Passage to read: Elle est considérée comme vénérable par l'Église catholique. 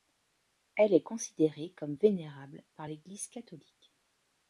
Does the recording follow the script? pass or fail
pass